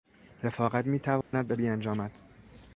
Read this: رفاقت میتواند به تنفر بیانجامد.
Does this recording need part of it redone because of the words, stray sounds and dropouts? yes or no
yes